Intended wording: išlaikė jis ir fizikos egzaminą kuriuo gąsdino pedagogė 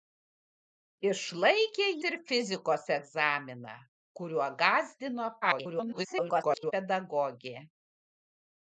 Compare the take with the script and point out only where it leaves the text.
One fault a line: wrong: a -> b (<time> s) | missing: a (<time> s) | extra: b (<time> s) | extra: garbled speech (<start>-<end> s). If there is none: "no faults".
missing: jis (1.9 s)
extra: garbled speech (5.4-6.7 s)